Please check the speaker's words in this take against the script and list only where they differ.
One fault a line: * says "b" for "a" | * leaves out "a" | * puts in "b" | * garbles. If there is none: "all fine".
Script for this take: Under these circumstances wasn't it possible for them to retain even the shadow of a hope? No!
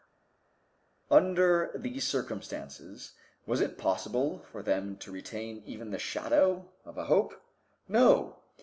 * says "was" for "wasn't"